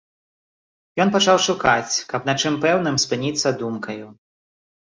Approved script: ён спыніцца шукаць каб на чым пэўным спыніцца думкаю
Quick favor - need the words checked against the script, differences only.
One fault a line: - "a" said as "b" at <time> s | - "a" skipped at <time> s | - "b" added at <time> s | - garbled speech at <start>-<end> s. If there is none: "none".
- "спыніцца" said as "пачаў" at 1.1 s